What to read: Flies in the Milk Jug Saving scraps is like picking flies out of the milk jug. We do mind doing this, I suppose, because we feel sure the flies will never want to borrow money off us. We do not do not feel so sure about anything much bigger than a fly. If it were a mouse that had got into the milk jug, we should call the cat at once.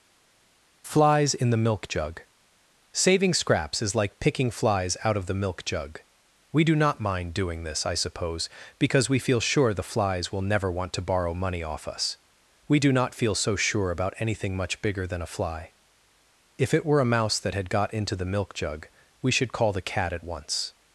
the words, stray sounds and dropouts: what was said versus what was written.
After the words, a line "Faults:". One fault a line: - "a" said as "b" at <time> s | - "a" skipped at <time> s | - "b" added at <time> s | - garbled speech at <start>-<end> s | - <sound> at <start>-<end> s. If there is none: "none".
Flies in the Milk Jug Saving scraps is like picking flies out of the milk jug. We do not mind doing this, I suppose, because we feel sure the flies will never want to borrow money off us. We do not feel so sure about anything much bigger than a fly. If it were a mouse that had got into the milk jug, we should call the cat at once.
Faults:
- "not" added at 6.7 s
- "do not" skipped at 13.2 s